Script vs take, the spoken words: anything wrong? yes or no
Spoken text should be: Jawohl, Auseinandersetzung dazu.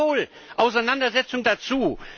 no